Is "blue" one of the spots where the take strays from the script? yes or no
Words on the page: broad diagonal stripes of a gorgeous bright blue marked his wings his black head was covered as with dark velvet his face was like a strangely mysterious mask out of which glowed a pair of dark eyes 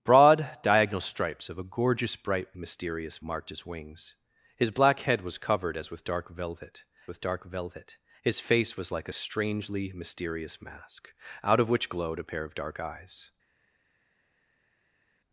yes